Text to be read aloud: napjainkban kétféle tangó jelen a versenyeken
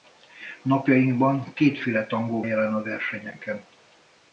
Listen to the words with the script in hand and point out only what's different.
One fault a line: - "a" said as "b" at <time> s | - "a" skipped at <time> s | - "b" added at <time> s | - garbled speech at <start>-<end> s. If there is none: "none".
none